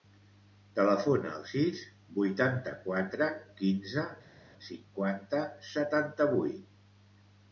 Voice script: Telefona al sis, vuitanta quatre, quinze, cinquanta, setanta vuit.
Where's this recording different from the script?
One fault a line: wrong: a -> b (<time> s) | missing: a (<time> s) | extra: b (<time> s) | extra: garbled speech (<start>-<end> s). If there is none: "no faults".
no faults